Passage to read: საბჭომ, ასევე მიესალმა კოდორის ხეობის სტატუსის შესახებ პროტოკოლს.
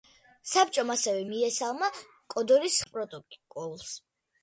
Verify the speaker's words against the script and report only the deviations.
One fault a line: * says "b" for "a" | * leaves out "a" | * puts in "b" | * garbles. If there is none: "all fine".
* leaves out "ხეობის სტატუსის შესახებ"